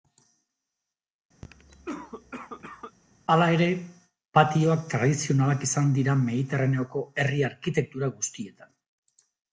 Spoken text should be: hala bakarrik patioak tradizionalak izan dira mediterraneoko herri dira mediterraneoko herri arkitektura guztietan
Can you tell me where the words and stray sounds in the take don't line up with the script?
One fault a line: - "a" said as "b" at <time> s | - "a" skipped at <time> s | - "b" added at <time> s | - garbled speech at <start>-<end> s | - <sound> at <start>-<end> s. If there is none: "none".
- cough at 1.4-3.0 s
- "bakarrik" said as "ere" at 3.5 s
- "dira mediterraneoko herri" skipped at 7.4 s